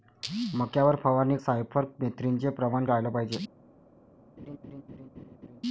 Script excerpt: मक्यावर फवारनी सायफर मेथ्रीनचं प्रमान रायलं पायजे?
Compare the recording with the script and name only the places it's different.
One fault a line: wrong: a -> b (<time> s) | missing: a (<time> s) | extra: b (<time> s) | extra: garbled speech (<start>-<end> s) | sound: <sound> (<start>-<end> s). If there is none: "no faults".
sound: laugh (4.4-5.6 s)